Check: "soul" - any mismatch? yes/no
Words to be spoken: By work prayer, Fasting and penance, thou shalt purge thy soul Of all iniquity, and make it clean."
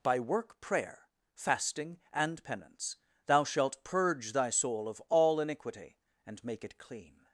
no